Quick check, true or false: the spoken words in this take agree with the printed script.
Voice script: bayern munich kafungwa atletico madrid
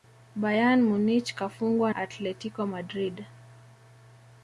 true